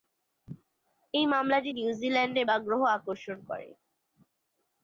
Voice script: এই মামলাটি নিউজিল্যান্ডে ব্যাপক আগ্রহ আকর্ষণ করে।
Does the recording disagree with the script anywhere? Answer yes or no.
yes